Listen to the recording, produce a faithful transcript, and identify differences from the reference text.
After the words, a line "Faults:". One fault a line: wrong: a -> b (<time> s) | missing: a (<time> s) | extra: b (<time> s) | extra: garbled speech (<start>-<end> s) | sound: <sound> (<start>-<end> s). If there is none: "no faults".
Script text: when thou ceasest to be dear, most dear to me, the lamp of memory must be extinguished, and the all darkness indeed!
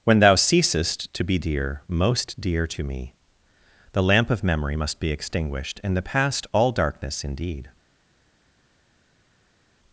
when thou ceasest to be dear, most dear to me, the lamp of memory must be extinguished, and the past all darkness indeed!
Faults:
extra: past (6.0 s)